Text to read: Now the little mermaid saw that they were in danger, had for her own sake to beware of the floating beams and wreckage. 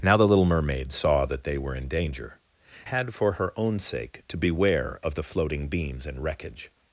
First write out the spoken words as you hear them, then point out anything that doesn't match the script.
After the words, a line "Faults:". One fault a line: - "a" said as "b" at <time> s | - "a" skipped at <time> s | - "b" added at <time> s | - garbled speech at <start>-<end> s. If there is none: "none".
Now the little mermaid saw that they were in danger, had for her own sake to beware of the floating beams and wreckage.
Faults:
none